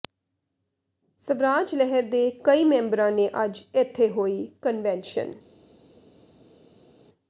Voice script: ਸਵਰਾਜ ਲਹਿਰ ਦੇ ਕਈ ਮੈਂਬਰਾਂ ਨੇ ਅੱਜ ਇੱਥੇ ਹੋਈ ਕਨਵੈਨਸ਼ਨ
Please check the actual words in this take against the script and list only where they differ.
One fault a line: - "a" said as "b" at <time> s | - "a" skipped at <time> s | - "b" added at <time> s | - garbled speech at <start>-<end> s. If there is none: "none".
none